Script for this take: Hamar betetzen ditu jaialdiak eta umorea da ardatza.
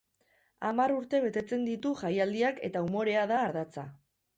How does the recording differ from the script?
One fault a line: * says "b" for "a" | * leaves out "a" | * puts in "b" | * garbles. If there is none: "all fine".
* puts in "urte"